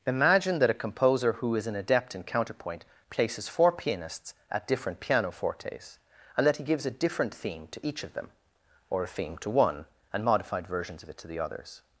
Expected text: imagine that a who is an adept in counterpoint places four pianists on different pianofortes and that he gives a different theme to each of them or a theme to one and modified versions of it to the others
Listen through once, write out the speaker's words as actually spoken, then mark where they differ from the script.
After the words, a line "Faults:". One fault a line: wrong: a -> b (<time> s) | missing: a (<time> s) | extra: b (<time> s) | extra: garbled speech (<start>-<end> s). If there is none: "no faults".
imagine that a composer who is an adept in counterpoint places four pianists at different pianofortes and that he gives a different theme to each of them or a theme to one and modified versions of it to the others
Faults:
extra: composer (0.7 s)
wrong: on -> at (4.5 s)